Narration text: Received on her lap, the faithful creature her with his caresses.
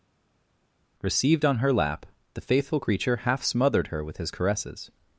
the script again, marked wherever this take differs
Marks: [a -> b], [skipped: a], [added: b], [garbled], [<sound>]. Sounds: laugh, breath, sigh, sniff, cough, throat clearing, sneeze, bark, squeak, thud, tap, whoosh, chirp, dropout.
Received on her lap, the faithful creature [added: half smothered] her with his caresses.